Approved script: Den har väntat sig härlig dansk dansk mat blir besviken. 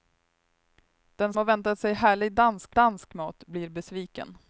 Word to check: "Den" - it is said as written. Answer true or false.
true